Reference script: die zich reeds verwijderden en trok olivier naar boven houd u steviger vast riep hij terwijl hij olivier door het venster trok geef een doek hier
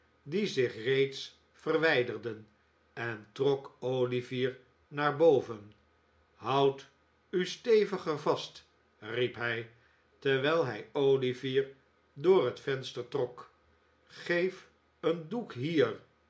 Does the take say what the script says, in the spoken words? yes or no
yes